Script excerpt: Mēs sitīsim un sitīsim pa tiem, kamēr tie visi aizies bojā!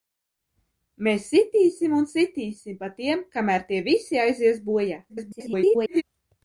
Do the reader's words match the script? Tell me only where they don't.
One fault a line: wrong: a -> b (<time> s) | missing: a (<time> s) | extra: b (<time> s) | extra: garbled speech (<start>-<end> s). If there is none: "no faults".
extra: garbled speech (5.1-6.0 s)